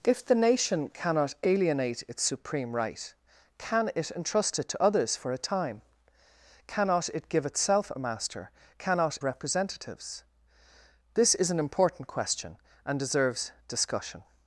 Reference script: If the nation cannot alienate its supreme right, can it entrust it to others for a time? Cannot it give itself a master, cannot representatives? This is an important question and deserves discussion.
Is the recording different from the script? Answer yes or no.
no